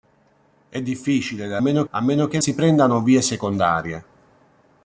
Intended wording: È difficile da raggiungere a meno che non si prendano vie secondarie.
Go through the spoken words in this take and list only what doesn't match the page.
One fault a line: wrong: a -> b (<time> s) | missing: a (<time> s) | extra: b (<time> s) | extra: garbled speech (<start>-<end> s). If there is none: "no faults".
wrong: raggiungere -> meno (1.6 s)
missing: non (2.4 s)